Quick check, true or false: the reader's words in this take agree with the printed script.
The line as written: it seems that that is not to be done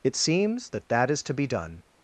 false